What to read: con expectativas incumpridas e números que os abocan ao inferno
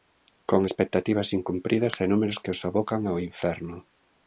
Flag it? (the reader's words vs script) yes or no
no